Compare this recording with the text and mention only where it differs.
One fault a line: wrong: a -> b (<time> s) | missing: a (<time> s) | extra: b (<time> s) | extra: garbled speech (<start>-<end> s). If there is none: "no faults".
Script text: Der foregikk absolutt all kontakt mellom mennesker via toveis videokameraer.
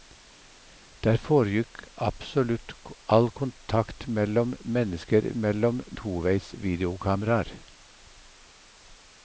wrong: via -> mellom (5.3 s)